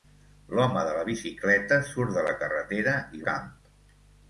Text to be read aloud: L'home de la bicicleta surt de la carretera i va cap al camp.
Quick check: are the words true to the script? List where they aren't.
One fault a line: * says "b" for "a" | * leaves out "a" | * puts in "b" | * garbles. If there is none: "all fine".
* leaves out "va cap al"